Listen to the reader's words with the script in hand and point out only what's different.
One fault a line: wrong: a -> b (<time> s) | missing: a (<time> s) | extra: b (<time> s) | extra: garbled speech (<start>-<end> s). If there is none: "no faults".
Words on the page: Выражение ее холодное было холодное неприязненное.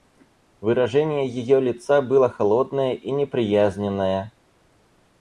wrong: холодное -> лица (1.6 s)
extra: и (3.0 s)